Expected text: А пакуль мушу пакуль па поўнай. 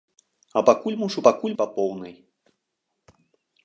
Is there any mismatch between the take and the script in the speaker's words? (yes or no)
no